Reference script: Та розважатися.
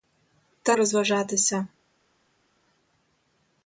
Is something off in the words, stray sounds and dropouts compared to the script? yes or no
no